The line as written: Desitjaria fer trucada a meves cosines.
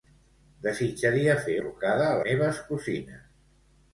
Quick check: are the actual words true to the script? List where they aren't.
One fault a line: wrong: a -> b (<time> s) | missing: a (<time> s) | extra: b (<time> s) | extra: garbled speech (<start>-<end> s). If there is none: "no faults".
no faults